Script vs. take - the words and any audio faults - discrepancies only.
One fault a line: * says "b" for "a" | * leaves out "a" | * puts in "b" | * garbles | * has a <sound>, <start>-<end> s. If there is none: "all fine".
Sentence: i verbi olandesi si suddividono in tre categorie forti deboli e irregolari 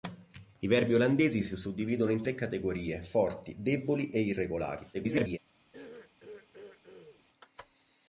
* garbles
* has a throat clearing, 5.7-7.2 s